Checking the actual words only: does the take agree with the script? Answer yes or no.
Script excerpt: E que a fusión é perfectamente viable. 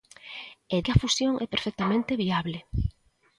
yes